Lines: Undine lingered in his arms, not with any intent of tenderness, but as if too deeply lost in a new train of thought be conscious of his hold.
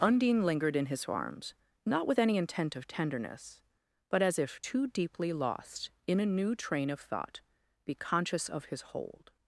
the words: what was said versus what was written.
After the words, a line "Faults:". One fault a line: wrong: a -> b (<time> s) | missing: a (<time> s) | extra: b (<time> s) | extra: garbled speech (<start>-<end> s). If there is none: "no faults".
Undine lingered in his arms, not with any intent of tenderness, but as if too deeply lost in a new train of thought be conscious of his hold.
Faults:
no faults